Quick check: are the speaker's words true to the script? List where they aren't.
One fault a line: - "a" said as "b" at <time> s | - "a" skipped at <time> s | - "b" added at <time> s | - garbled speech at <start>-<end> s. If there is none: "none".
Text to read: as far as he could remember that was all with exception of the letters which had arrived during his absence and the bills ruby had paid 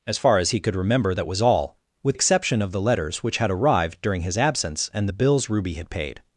none